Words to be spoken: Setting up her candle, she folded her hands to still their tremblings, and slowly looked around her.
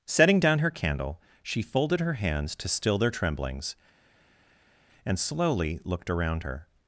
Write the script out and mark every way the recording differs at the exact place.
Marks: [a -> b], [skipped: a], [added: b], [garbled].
Setting [up -> down] her candle, she folded her hands to still their tremblings, and slowly looked around her.